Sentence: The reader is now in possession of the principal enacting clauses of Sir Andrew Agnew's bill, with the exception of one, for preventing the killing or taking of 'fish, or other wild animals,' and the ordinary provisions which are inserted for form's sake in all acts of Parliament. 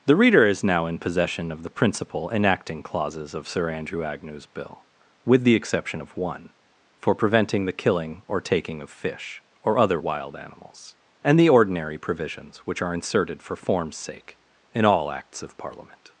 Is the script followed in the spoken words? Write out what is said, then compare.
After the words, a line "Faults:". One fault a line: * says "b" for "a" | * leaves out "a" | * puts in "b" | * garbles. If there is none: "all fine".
The reader is now in possession of the principal enacting clauses of Sir Andrew Agnew's bill, with the exception of one, for preventing the killing or taking of 'fish, or other wild animals,' and the ordinary provisions which are inserted for form's sake in all acts of Parliament.
Faults:
all fine